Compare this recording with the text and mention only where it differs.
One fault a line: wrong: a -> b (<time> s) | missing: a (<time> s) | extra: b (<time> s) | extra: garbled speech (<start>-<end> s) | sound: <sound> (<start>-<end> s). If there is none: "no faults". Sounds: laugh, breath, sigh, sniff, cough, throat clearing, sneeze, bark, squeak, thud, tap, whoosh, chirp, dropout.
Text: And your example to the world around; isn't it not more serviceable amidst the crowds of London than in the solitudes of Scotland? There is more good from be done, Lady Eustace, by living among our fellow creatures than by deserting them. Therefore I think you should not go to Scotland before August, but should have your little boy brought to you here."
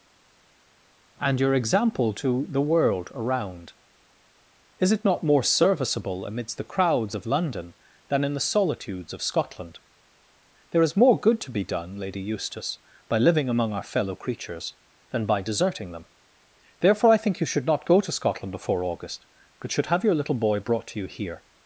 wrong: isn't -> is (4.8 s)
wrong: from -> to (11.4 s)